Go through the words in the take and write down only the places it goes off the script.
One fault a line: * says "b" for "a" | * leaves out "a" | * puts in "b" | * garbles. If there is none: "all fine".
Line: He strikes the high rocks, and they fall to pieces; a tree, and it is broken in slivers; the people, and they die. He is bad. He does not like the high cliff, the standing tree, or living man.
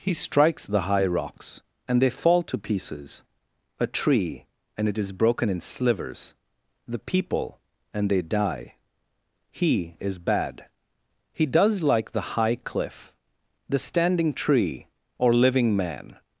* leaves out "not"